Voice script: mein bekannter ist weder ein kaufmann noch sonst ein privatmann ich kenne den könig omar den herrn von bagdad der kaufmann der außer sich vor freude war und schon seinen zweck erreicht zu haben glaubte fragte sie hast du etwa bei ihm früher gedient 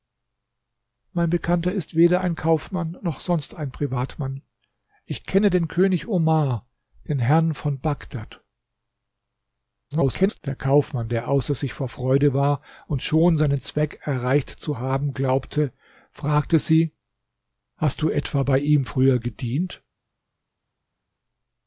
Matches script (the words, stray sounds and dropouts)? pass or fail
fail